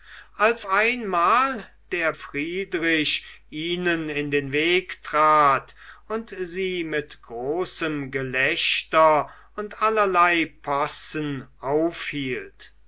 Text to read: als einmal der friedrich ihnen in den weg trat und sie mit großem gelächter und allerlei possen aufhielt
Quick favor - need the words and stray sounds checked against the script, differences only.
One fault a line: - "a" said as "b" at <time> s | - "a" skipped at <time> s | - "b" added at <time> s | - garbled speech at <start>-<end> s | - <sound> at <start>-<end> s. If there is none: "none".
none